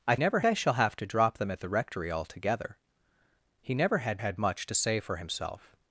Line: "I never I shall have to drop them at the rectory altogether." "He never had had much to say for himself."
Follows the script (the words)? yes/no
yes